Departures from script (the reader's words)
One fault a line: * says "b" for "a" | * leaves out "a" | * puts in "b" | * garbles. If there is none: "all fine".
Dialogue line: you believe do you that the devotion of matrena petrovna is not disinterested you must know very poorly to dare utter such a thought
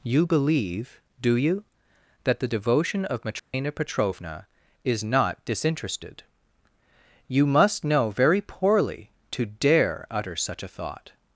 all fine